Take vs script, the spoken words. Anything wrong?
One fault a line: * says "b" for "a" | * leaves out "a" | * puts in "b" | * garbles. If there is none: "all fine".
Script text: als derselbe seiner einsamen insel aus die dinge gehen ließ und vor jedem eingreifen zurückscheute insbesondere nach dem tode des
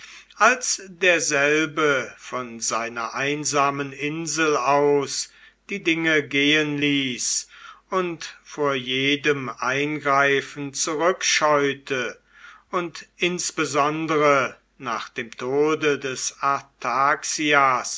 * puts in "von"
* puts in "und"